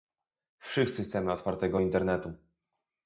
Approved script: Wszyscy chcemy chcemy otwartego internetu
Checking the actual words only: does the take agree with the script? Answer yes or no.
no